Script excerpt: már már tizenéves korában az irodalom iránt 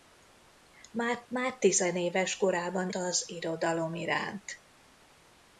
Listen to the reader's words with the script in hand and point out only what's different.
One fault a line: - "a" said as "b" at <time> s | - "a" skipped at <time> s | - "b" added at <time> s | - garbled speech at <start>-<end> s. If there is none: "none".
none